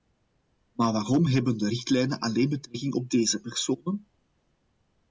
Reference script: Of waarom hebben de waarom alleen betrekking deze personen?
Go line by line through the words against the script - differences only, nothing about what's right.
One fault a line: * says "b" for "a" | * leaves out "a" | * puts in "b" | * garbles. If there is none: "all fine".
* says "Maar" for "Of"
* says "richtlijnen" for "waarom"
* puts in "op"